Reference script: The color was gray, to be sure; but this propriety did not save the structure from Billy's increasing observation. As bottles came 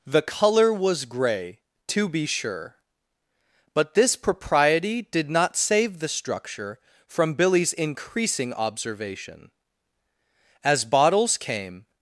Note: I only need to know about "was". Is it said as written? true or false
true